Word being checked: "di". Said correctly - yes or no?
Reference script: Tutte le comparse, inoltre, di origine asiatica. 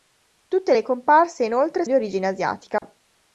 yes